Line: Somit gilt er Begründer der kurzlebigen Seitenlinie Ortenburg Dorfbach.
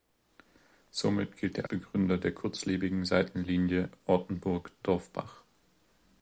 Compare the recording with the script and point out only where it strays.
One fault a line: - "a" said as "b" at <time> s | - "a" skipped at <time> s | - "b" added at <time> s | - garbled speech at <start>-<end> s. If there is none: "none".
none